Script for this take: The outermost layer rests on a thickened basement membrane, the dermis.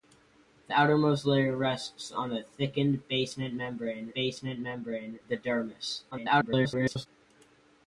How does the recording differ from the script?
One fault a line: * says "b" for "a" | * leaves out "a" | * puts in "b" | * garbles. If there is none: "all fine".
* puts in "basement membrane"
* garbles